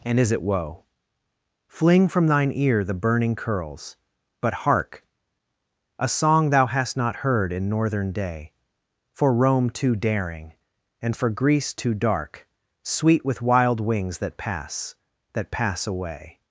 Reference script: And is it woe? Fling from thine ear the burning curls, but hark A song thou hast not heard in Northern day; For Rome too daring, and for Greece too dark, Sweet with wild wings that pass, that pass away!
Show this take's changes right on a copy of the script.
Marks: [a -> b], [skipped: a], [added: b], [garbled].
And is it woe? Fling from thine ear the burning curls, but hark A song thou hast not heard in Northern day; For Rome too daring, and for Greece too dark, Sweet with wild wings that pass, that pass away!